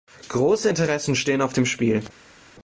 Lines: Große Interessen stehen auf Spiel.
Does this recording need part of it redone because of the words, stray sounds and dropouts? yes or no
yes